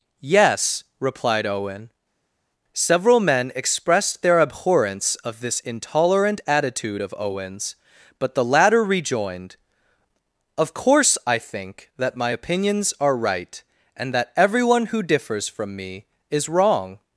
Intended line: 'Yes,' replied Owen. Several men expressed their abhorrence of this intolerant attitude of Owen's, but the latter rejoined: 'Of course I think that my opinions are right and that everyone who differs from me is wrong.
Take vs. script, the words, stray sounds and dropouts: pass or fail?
pass